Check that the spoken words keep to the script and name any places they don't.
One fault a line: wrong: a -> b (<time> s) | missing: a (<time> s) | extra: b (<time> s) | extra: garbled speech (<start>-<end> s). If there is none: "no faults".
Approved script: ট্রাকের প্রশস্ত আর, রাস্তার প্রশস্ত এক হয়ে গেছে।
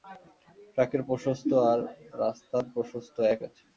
missing: হয়ে (3.4 s)